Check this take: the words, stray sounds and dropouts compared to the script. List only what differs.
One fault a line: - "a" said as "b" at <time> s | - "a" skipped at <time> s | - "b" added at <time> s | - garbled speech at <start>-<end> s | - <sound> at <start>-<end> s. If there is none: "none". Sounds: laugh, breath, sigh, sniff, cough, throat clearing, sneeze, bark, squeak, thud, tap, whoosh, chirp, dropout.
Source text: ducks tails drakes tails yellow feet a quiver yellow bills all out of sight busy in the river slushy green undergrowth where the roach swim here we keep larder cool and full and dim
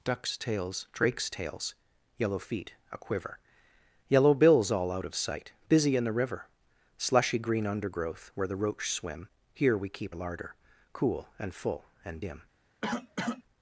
- cough at 12.8-13.4 s